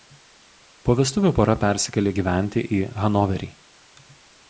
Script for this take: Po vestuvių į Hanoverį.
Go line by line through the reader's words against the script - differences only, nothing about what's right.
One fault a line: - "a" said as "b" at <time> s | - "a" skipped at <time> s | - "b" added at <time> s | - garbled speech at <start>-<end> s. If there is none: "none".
- "pora persikėlė gyventi" added at 1.4 s